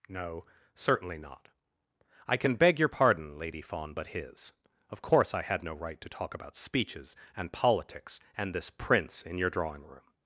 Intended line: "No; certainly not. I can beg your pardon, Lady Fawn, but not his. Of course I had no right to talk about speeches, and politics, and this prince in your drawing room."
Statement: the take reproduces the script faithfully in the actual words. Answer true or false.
false